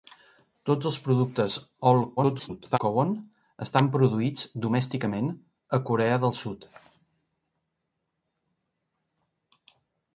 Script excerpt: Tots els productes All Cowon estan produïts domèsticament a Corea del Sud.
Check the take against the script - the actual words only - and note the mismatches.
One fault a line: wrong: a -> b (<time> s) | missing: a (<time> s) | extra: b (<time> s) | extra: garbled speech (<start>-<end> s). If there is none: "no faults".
extra: garbled speech (2.2-2.8 s)